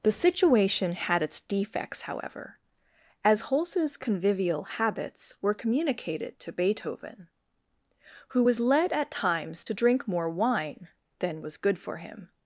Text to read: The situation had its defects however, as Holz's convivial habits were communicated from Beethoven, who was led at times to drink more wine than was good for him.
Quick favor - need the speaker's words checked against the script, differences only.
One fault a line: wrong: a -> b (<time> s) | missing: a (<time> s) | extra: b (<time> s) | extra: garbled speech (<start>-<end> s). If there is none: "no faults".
wrong: from -> to (6.4 s)